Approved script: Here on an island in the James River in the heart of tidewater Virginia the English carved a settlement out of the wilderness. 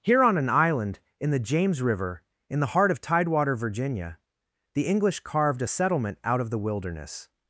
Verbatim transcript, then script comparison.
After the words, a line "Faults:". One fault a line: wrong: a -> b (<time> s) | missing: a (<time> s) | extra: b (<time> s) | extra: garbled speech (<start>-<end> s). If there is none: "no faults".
Here on an island in the James River in the heart of tidewater Virginia the English carved a settlement out of the wilderness.
Faults:
no faults